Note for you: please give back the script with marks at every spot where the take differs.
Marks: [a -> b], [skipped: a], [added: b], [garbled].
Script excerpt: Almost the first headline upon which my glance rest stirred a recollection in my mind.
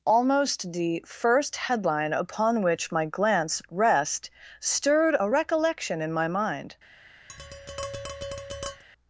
Almost the first headline upon which my glance rest stirred a recollection in my mind.